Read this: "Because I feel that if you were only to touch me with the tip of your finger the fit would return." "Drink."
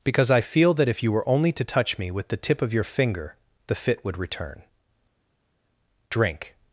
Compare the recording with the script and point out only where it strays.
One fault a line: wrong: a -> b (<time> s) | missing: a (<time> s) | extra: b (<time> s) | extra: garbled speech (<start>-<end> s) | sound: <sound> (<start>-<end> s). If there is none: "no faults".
no faults